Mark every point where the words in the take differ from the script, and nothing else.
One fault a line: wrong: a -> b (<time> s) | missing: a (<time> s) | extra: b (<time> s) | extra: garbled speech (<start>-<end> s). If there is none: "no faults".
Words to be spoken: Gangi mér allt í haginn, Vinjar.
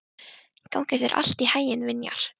wrong: mér -> þér (1.0 s)